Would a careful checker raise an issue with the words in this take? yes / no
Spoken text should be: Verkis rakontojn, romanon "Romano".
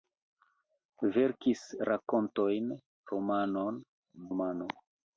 no